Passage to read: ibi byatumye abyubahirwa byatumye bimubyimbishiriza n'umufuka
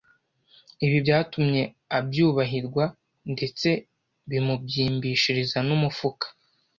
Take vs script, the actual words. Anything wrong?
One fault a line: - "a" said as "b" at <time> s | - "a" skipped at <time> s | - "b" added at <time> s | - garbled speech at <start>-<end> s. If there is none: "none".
- "byatumye" said as "ndetse" at 3.3 s